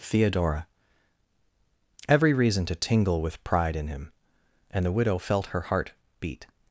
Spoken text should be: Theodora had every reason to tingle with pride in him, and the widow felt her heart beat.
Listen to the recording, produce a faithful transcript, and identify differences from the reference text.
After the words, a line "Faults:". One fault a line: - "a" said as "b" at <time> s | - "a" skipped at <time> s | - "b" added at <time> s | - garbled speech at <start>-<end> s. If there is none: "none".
Theodora every reason to tingle with pride in him, and the widow felt her heart beat.
Faults:
- "had" skipped at 0.7 s